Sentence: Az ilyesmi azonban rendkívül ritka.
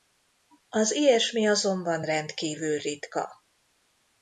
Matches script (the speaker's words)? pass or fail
pass